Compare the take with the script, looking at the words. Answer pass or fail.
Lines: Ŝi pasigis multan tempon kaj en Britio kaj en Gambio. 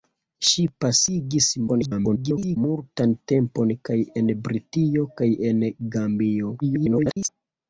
fail